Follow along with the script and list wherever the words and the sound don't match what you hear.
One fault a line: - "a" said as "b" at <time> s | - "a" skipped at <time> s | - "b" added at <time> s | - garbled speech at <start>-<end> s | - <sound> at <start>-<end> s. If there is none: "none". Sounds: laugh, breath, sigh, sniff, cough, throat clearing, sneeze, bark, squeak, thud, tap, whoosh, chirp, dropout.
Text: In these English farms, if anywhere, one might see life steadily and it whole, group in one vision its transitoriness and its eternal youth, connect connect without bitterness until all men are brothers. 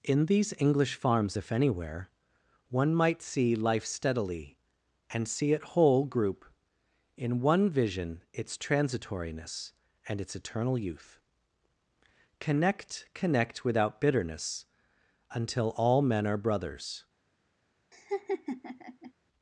- "see" added at 5.3 s
- laugh at 17.9-19.1 s